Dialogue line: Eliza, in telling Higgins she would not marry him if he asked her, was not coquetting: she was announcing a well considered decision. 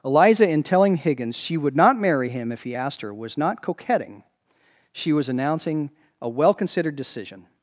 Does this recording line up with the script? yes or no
yes